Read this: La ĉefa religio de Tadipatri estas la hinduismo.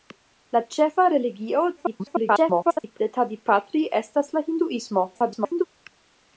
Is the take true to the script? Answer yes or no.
no